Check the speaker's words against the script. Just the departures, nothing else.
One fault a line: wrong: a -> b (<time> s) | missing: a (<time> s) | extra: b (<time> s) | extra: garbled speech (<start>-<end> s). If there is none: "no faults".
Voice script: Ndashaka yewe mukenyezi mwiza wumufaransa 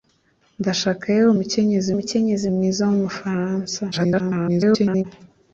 extra: mukenyezi (2.0 s)
extra: garbled speech (3.9-5.0 s)